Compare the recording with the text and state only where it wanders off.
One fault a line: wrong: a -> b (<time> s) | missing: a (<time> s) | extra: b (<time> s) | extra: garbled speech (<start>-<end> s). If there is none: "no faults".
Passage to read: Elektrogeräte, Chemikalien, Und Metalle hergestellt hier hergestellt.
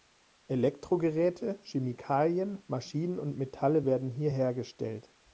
extra: Maschinen (2.6 s)
wrong: hergestellt -> werden (3.8 s)